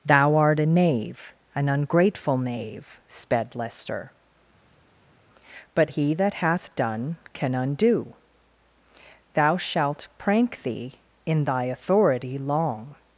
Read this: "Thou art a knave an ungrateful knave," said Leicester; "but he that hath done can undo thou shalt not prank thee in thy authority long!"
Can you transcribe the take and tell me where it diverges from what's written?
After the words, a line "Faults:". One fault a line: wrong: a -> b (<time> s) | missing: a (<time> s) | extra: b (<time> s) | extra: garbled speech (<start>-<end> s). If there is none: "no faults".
"Thou art a knave an ungrateful knave," sped Leicester; "but he that hath done can undo thou shalt prank thee in thy authority long!"
Faults:
wrong: said -> sped (3.1 s)
missing: not (10.1 s)